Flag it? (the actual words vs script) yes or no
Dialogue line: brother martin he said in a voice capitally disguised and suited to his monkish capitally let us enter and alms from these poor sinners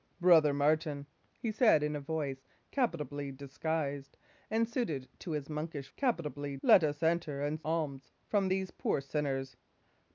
no